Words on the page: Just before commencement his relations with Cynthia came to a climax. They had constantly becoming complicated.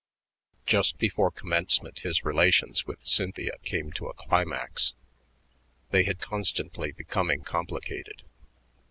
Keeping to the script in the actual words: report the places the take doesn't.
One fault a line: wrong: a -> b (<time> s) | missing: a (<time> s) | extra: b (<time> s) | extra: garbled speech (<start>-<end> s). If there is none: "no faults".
no faults